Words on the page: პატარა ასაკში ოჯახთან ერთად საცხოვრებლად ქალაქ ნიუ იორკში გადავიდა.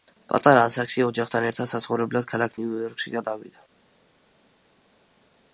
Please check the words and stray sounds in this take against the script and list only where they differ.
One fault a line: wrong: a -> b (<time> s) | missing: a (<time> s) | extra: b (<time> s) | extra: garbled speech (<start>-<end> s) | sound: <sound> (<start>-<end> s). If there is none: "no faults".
no faults